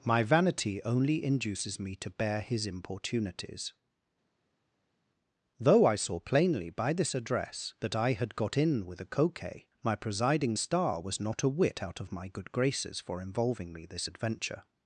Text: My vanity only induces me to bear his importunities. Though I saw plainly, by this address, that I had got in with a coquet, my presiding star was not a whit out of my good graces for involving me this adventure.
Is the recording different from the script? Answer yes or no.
no